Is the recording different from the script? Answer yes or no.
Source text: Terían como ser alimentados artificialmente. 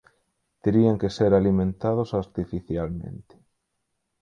yes